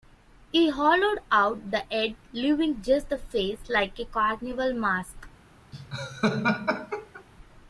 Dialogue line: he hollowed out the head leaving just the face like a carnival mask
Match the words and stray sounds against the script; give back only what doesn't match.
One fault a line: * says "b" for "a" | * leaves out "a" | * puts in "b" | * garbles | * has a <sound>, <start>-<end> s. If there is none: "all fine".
* has a laugh, 5.7-7.2 s